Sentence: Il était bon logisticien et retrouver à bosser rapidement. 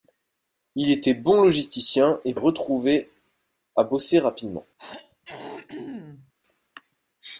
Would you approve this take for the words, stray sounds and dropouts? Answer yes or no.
no